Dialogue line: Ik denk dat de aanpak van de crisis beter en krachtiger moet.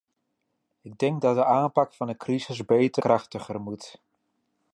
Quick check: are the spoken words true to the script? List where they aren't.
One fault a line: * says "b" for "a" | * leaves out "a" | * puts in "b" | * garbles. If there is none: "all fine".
* leaves out "en"